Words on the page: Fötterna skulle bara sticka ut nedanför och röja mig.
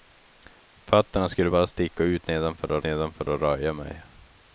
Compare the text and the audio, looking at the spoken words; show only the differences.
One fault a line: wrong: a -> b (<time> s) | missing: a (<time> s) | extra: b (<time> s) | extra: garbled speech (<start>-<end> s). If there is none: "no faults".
extra: nedanför och (2.8 s)